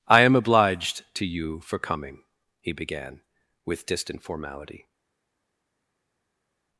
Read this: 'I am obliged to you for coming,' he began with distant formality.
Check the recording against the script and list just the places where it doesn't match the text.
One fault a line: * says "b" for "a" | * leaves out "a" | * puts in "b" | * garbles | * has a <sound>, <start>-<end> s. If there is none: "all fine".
all fine